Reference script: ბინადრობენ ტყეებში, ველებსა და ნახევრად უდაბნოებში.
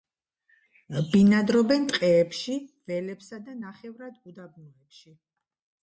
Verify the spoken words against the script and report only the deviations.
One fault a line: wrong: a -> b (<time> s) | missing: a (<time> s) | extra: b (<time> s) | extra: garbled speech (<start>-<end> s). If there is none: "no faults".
no faults